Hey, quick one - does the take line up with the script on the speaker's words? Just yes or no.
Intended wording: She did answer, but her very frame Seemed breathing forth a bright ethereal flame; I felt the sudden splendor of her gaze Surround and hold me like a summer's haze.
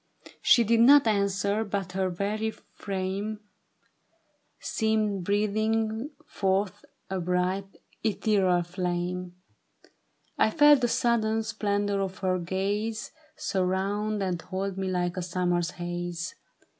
no